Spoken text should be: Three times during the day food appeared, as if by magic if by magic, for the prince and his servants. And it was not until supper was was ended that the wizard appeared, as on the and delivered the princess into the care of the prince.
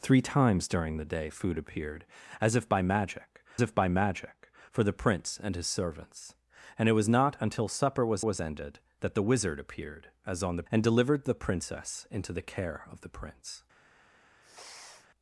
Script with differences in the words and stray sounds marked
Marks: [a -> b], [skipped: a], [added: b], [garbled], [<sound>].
Three times during the day food appeared, as if by magic if by magic, for the prince and his servants. And it was not until supper was was ended that the wizard appeared, as on the and delivered the princess into the care of the prince. [sniff]